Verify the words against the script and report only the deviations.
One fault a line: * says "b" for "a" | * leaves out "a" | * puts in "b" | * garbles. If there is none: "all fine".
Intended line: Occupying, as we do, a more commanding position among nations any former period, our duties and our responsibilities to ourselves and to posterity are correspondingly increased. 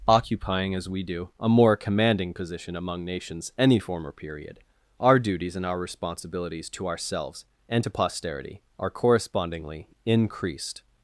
all fine